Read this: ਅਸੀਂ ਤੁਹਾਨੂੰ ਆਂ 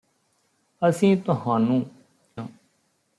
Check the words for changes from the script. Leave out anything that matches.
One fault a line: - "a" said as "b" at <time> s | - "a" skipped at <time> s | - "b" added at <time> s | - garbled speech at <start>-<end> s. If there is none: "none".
none